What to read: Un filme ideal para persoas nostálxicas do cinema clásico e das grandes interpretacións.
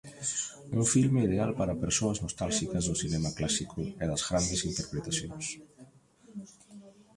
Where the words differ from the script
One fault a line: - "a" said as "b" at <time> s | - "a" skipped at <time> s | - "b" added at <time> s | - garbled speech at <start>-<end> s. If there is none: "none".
none